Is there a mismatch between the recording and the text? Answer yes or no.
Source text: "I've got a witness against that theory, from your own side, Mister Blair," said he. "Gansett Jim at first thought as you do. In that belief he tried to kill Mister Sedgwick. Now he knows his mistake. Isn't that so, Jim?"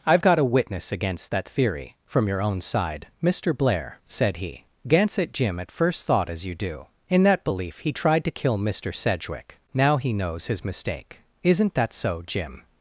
no